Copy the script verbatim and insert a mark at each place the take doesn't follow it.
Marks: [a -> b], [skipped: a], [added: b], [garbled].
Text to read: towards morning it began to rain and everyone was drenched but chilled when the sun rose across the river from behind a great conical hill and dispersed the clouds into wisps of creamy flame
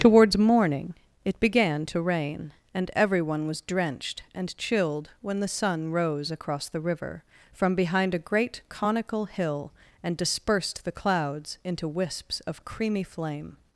towards morning it began to rain and everyone was drenched [but -> and] chilled when the sun rose across the river from behind a great conical hill and dispersed the clouds into wisps of creamy flame